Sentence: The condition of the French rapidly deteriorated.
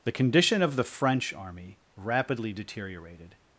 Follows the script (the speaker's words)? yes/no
no